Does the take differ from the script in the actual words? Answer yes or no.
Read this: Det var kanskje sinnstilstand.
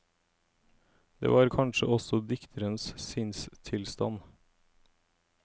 yes